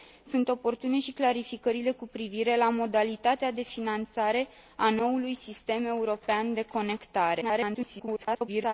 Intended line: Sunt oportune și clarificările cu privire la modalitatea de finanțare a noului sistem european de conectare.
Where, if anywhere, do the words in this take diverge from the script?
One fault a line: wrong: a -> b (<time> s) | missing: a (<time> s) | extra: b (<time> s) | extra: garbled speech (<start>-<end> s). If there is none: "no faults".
extra: garbled speech (7.4-8.7 s)